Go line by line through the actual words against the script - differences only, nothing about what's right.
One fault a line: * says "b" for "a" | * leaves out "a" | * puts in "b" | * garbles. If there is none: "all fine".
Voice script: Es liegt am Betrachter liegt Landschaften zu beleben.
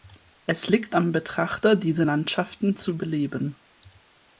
* says "diese" for "liegt"